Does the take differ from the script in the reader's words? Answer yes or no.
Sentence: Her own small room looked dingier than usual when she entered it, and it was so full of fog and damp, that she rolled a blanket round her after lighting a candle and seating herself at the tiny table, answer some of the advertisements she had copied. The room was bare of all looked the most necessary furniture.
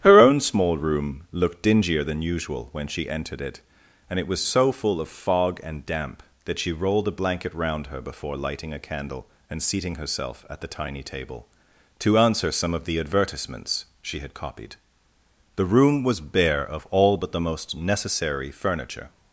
yes